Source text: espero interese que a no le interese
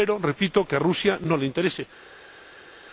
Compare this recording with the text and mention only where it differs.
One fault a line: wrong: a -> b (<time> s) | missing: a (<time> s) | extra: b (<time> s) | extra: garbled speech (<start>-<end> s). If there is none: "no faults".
wrong: interese -> repito (0.2 s)
extra: rusia (0.8 s)